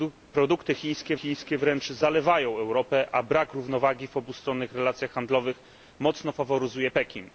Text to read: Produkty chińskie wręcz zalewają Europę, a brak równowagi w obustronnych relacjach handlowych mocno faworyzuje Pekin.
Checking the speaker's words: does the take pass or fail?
fail